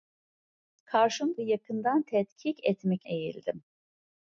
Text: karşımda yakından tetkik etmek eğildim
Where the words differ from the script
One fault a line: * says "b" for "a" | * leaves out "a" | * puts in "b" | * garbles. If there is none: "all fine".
all fine